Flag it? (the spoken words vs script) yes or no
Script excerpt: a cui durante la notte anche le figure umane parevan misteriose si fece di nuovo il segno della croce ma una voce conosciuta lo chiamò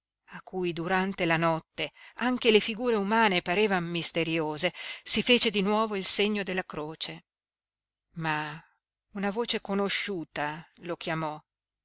no